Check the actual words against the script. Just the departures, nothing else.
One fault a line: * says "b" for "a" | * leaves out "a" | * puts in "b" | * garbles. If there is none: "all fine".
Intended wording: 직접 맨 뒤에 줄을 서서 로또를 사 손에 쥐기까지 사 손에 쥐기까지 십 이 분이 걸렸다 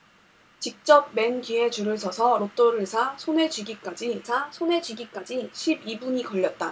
all fine